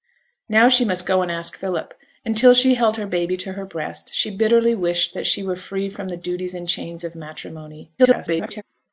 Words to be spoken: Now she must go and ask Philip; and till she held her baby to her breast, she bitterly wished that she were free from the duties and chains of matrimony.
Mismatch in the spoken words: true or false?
true